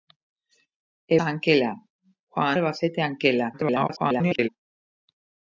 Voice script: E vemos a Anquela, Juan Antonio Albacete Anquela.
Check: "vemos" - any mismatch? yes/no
yes